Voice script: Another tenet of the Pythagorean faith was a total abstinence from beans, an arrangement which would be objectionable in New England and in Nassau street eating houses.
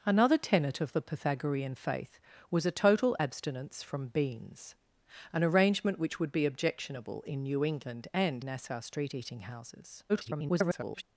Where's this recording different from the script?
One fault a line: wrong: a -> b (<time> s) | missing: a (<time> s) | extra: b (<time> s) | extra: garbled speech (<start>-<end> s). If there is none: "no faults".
missing: in (8.4 s)
extra: garbled speech (10.1-11.0 s)